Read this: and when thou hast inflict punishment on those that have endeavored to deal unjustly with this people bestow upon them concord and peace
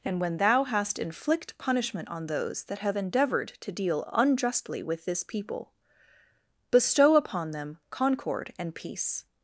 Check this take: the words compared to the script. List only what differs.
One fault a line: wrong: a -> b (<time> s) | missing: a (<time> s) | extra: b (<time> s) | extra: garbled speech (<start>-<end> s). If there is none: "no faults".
no faults